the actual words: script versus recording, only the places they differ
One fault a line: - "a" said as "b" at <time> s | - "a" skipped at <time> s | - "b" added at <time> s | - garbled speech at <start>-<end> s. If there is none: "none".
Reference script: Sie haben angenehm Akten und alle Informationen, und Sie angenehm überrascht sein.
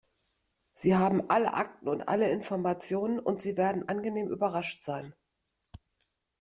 - "angenehm" said as "alle" at 1.3 s
- "werden" added at 3.5 s